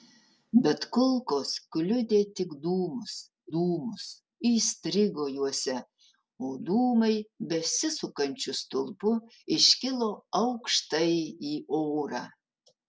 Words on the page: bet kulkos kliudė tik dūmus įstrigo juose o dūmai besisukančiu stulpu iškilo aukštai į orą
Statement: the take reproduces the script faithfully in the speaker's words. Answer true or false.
false